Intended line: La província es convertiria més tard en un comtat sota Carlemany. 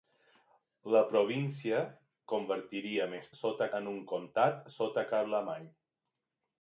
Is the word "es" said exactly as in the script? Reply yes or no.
no